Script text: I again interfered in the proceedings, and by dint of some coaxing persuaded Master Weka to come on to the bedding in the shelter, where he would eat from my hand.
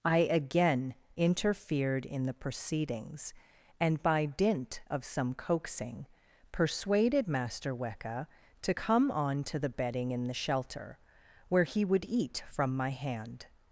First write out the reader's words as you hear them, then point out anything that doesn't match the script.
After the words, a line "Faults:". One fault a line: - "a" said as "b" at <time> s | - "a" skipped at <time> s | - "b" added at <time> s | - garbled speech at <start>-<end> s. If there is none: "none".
I again interfered in the proceedings, and by dint of some coaxing persuaded Master Weka to come on to the bedding in the shelter, where he would eat from my hand.
Faults:
none